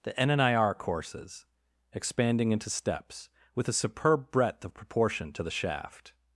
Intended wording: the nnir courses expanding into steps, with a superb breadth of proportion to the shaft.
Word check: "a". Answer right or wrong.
right